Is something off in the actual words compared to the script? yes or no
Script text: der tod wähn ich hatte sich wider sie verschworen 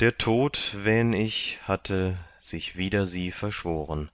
no